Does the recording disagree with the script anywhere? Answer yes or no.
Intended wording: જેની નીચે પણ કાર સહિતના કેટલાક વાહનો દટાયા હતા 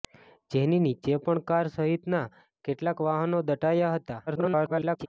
yes